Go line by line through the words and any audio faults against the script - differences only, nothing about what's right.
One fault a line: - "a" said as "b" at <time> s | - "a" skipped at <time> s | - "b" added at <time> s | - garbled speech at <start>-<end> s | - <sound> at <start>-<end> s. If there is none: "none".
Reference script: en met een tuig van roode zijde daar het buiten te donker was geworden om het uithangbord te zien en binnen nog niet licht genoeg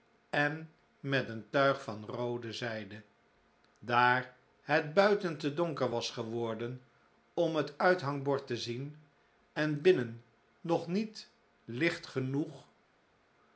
none